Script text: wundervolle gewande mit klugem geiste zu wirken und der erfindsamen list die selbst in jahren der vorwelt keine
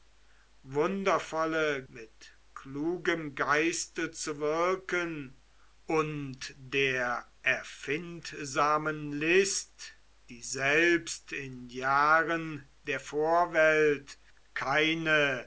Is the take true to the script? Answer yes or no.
no